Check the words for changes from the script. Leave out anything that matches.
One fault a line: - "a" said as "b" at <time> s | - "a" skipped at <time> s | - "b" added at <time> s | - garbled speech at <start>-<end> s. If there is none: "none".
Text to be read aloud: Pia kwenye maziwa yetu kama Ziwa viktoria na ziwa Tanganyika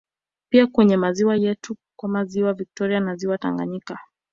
none